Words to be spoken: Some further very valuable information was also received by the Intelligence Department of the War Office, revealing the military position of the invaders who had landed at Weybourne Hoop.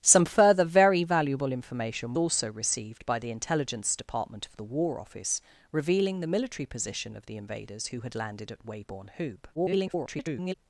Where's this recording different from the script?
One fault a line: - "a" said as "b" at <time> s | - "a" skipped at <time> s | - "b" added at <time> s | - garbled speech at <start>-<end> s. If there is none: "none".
- "was" skipped at 2.1 s
- garbled speech at 9.5-10.5 s